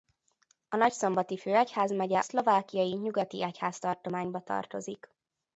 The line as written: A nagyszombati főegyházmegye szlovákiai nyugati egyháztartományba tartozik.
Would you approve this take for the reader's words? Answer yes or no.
yes